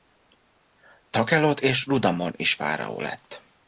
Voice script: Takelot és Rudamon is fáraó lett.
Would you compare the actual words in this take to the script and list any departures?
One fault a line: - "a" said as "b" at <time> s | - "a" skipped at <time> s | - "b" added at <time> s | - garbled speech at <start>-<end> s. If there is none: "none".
none